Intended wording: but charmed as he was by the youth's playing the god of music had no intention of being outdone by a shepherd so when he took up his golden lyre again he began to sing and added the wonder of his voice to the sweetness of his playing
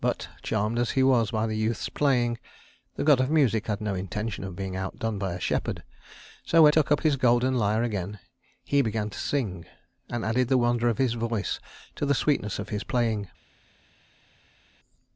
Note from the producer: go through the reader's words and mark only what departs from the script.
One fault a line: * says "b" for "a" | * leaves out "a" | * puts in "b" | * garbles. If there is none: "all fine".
* leaves out "he"